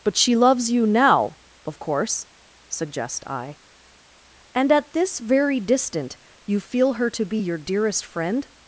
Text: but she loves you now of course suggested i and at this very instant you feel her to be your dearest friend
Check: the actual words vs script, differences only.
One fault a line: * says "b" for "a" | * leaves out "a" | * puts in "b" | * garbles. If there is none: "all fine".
* says "suggest" for "suggested"
* says "distant" for "instant"